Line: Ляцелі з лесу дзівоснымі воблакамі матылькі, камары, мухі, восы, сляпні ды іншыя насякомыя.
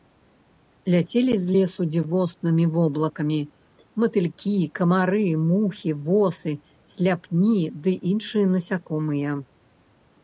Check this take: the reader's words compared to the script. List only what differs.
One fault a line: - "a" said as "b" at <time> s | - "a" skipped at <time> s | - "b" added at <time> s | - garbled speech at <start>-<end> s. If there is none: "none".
none